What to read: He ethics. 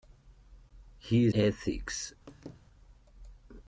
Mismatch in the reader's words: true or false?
false